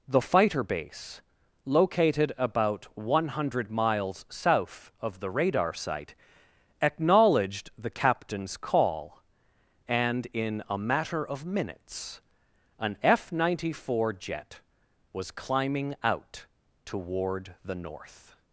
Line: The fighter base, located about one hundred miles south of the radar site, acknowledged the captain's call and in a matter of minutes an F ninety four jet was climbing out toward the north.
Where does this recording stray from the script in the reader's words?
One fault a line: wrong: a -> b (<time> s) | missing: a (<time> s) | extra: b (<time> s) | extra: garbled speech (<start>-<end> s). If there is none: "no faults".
no faults